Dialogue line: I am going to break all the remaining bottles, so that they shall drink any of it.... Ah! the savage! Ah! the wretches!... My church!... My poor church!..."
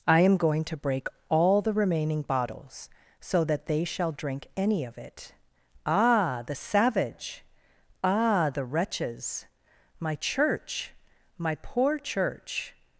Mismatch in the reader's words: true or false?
false